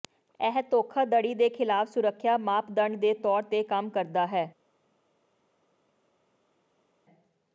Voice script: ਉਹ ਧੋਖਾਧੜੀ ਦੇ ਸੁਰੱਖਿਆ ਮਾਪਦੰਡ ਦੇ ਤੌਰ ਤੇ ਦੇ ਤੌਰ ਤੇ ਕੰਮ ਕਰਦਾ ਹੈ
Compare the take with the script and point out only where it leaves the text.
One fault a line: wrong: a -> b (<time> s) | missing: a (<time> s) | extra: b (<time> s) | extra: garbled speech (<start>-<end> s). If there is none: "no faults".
wrong: ਉਹ -> ਇਹ (0.4 s)
extra: ਖਿਲਾਫ (1.5 s)
missing: ਦੇ ਤੌਰ ਤੇ (3.6 s)